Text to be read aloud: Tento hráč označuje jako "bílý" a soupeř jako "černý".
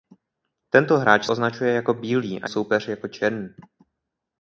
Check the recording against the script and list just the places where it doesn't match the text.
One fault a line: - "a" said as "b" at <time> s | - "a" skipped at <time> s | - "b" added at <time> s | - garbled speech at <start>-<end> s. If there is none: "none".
none